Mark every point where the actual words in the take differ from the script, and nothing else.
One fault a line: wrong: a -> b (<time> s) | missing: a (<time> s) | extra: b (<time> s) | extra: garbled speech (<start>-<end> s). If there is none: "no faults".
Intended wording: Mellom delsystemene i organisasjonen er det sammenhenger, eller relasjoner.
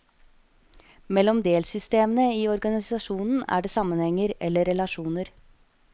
no faults